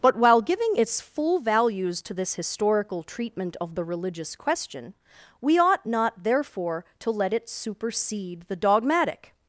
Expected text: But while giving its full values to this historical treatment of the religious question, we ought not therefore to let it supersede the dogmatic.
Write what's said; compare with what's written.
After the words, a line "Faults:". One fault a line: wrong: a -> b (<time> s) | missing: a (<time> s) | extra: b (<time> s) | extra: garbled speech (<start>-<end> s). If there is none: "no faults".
But while giving its full values to this historical treatment of the religious question, we ought not therefore to let it supersede the dogmatic.
Faults:
no faults